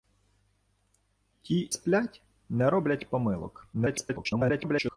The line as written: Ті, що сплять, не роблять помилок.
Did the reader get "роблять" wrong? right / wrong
right